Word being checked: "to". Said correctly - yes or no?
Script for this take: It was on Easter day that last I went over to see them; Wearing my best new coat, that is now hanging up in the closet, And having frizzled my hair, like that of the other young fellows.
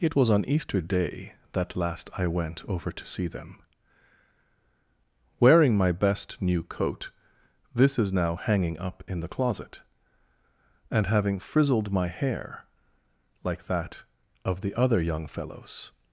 yes